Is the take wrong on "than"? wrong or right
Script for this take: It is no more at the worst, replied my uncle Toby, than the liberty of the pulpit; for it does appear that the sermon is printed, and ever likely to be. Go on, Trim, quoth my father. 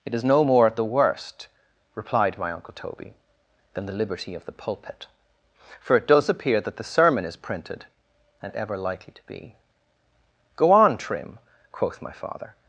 right